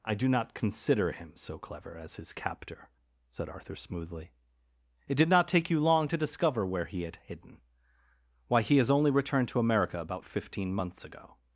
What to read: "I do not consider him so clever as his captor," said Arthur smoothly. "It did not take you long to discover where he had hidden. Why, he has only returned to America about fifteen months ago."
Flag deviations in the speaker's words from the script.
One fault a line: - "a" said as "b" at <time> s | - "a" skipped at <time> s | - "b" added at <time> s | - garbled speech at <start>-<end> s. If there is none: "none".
none